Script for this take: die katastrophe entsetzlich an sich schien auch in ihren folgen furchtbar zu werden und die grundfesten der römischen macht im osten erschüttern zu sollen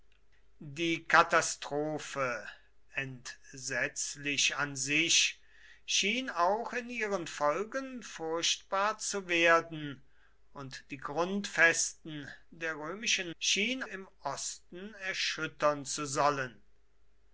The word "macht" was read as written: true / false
false